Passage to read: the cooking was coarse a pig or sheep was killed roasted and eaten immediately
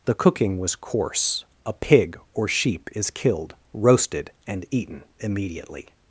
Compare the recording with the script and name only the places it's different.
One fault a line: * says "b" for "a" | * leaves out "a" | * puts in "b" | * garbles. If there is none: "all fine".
* says "is" for "was"